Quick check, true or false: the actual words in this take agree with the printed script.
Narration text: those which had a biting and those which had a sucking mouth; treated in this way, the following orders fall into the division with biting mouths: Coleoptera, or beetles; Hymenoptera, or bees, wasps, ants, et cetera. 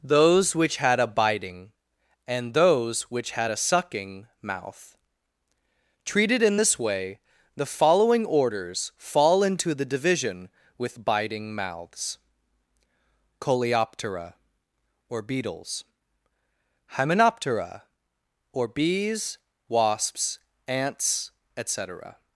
true